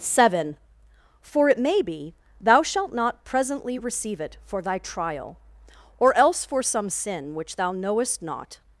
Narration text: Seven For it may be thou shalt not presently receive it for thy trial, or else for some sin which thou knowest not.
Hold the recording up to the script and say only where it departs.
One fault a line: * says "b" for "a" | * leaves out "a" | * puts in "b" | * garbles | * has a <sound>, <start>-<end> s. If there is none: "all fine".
all fine